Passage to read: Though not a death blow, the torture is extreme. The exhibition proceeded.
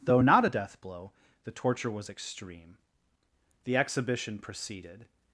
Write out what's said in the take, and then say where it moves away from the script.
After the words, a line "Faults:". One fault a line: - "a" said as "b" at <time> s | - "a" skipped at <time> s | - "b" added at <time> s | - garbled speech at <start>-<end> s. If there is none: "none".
Though not a death blow, the torture was extreme. The exhibition proceeded.
Faults:
- "is" said as "was" at 1.9 s